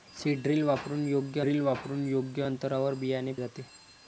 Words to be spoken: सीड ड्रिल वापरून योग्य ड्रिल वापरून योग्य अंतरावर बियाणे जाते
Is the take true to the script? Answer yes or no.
yes